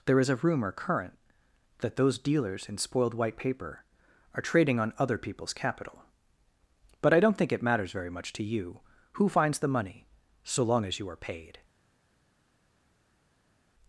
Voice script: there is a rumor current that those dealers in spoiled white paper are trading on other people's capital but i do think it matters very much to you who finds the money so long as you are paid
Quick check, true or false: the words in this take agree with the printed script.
false